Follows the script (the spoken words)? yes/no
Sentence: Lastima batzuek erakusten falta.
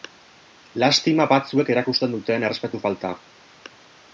no